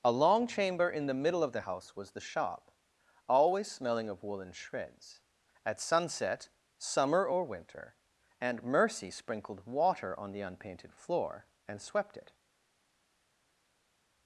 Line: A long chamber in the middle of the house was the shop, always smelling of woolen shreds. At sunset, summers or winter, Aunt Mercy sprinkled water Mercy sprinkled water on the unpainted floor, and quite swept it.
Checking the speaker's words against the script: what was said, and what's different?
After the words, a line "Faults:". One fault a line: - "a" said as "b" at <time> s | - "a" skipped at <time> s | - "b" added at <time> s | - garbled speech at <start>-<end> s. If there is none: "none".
A long chamber in the middle of the house was the shop, always smelling of woolen shreds. At sunset, summer or winter, Aunt Mercy sprinkled water on the unpainted floor, and swept it.
Faults:
- "summers" said as "summer" at 6.8 s
- "Mercy sprinkled water" skipped at 10.2 s
- "quite" skipped at 11.8 s